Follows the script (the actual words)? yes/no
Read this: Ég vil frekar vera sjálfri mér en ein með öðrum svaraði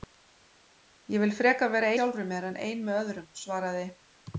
yes